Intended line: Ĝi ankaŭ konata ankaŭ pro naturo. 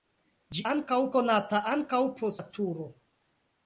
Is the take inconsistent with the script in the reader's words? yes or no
no